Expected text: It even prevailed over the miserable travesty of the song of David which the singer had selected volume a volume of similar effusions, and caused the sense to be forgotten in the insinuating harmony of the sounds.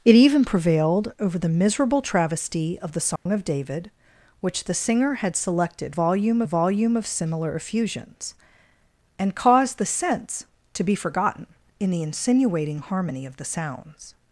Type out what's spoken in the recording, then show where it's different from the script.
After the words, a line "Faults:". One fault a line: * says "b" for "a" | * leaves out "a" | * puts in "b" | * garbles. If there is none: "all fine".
It even prevailed over the miserable travesty of the song of David which the singer had selected volume a volume of similar effusions, and caused the sense to be forgotten in the insinuating harmony of the sounds.
Faults:
all fine